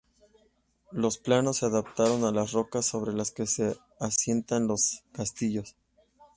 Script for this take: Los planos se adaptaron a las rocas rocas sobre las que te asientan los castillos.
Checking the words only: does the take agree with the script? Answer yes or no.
no